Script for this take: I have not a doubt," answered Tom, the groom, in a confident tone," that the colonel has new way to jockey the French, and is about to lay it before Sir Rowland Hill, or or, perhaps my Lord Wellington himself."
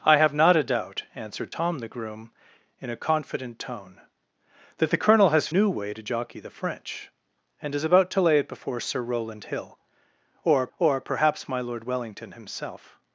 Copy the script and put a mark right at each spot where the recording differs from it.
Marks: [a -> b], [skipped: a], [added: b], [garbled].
I have not a doubt," answered Tom, the groom, in a confident tone," that the colonel has new way to jockey the French, and is about to lay it before Sir Rowland Hill, or or, perhaps my Lord Wellington himself."